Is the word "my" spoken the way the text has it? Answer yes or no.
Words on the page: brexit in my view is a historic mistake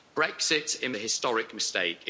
no